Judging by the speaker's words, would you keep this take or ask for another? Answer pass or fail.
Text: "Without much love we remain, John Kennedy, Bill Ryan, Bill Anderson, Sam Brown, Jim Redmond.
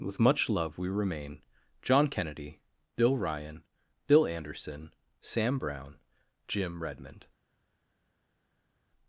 fail